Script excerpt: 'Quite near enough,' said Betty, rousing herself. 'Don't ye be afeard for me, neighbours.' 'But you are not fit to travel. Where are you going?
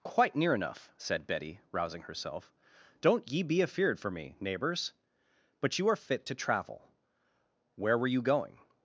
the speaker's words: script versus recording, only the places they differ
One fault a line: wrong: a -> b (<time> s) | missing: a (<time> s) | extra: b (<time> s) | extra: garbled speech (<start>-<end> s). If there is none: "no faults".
missing: not (6.0 s)
wrong: are -> were (8.0 s)